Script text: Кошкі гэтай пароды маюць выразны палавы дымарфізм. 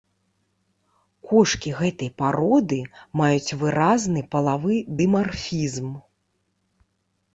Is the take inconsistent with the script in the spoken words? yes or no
no